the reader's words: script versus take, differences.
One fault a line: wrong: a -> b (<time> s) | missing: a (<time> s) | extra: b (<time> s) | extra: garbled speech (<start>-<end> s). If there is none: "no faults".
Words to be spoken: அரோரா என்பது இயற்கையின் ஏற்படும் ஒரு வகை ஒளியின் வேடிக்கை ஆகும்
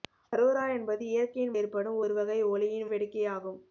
no faults